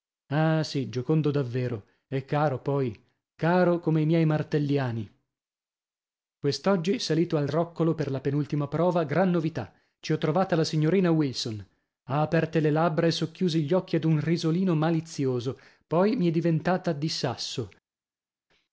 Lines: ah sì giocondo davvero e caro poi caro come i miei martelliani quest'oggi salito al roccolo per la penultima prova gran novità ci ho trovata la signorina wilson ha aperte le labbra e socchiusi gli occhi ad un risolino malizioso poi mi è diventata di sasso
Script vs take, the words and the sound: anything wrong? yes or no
no